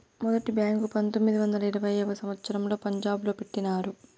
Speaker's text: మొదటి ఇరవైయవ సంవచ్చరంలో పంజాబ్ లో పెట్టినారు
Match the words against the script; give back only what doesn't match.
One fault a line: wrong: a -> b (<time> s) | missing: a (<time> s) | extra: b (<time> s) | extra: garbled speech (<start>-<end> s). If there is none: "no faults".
extra: బ్యాంకు పంతొమ్మిది వందల (0.5 s)